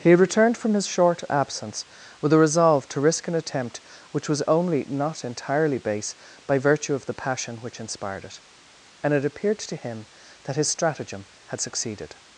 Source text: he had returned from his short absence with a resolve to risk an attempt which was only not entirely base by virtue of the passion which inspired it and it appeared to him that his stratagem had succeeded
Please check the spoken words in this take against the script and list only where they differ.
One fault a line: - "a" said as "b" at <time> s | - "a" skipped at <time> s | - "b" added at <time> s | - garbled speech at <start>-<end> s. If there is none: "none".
none